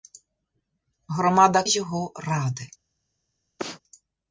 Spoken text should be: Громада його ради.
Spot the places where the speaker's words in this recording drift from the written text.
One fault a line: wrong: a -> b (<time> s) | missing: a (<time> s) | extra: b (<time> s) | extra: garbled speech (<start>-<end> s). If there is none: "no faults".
no faults